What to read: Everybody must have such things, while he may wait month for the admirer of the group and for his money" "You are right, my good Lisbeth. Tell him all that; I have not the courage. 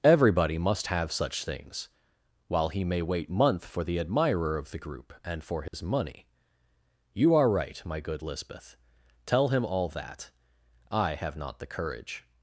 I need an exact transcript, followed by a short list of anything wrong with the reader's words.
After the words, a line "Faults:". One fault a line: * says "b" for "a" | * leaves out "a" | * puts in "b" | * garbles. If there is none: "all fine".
Everybody must have such things, while he may wait month for the admirer of the group and for his money" "You are right, my good Lisbeth. Tell him all that; I have not the courage.
Faults:
all fine